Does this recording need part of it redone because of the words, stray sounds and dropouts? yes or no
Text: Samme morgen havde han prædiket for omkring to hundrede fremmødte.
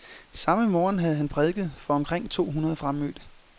no